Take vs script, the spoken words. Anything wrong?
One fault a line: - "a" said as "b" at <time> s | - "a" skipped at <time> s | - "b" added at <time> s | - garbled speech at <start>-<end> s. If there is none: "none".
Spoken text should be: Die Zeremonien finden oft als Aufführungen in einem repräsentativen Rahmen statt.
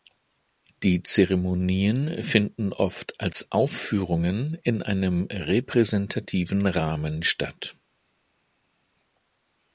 none